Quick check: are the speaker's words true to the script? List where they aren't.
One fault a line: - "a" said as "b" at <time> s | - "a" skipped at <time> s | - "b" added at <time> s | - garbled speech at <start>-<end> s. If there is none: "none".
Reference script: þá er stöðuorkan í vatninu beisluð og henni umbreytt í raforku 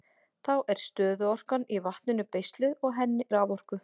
- "umbreytt" skipped at 3.3 s